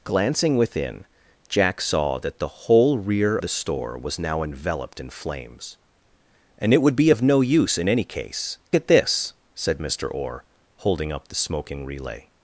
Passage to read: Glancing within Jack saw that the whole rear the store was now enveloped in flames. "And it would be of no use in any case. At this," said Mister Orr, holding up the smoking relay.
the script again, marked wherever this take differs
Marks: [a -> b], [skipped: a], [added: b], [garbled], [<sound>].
Glancing within Jack saw that the whole rear the store was now enveloped in flames. "And it would be of no use in any case. At this," said Mister Orr, holding up the smoking relay.